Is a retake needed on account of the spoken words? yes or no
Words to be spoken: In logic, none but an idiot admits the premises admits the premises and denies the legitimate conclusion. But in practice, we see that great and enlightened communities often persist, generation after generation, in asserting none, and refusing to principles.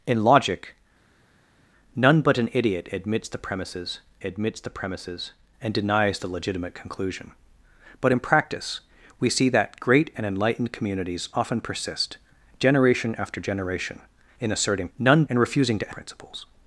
no